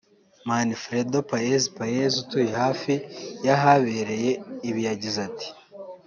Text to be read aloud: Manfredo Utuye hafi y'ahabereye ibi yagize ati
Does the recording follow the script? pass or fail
fail